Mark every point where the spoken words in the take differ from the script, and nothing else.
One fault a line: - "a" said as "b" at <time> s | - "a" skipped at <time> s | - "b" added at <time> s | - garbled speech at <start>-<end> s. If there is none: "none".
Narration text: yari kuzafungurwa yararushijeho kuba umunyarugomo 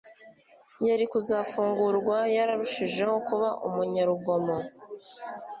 none